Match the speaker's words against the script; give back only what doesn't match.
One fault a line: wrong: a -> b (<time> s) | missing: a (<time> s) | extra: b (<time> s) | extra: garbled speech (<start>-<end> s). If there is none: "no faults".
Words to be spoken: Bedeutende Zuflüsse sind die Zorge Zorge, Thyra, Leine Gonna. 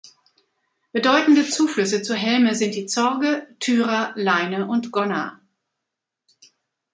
extra: zur Helme (2.0 s)
missing: Zorge (3.5 s)
extra: und (4.6 s)